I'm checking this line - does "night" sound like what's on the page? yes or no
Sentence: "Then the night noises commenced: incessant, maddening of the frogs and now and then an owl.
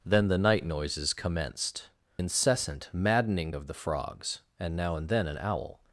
yes